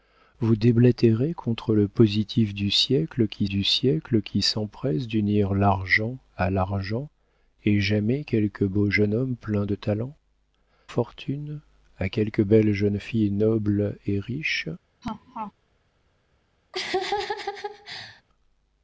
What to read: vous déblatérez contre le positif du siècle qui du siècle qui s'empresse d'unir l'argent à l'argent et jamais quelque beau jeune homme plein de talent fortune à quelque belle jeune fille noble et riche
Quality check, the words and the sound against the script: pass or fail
fail